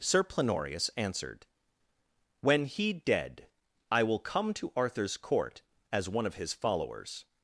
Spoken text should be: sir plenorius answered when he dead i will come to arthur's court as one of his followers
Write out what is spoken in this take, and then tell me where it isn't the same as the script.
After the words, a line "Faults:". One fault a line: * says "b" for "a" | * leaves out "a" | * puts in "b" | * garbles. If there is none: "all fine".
sir plenorius answered when he dead i will come to arthur's court as one of his followers
Faults:
all fine